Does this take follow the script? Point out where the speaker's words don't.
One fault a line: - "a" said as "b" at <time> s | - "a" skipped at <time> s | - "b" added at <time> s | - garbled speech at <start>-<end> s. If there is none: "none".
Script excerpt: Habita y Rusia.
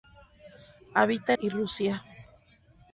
none